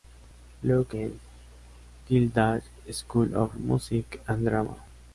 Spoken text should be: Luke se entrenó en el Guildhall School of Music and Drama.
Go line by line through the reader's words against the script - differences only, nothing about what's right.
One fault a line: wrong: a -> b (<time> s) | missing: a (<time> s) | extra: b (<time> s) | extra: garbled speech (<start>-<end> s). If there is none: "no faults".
missing: se entrenó en (0.9 s)